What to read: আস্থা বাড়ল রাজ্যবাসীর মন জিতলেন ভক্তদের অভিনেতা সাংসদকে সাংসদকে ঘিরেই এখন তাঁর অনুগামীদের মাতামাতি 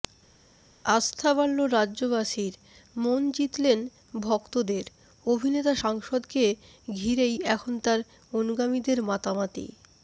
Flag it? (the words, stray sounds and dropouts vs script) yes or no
yes